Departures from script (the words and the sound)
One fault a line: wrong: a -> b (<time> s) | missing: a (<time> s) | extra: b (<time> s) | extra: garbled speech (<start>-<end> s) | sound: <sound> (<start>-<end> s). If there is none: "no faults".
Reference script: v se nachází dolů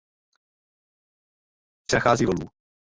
no faults